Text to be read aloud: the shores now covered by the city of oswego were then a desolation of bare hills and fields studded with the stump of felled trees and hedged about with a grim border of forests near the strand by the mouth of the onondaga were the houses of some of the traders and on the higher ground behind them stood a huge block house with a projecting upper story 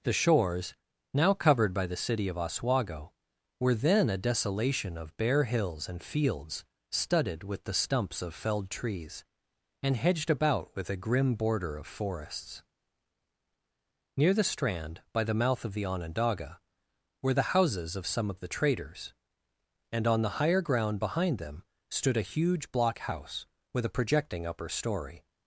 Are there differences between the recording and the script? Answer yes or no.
yes